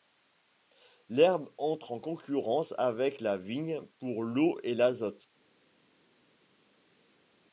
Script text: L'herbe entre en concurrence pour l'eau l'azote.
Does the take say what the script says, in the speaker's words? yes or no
no